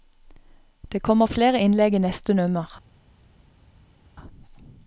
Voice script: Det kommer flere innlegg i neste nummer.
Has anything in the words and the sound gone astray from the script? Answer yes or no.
no